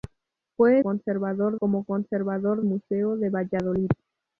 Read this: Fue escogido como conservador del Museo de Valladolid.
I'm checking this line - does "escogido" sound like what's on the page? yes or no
no